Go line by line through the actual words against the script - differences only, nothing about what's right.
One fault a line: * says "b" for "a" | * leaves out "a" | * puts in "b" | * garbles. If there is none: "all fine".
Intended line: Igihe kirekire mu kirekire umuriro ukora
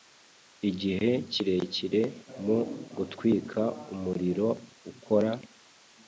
* says "gutwika" for "kirekire"